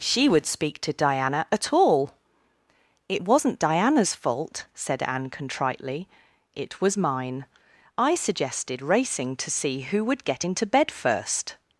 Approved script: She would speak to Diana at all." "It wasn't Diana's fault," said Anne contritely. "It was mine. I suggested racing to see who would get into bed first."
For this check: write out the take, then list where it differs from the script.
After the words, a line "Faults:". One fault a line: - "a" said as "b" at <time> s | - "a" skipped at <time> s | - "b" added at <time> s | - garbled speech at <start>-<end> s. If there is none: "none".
She would speak to Diana at all." "It wasn't Diana's fault," said Anne contritely. "It was mine. I suggested racing to see who would get into bed first."
Faults:
none